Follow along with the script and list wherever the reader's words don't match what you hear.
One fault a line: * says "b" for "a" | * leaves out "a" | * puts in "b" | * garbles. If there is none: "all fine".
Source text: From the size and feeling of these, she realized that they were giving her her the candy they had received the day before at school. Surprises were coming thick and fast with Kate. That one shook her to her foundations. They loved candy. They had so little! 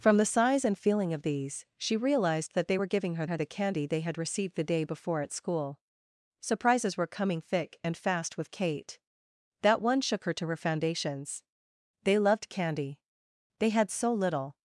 all fine